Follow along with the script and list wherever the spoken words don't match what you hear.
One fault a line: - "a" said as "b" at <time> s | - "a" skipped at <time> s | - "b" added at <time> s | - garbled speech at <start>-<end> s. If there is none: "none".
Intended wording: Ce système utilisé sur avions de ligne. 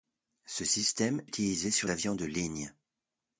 none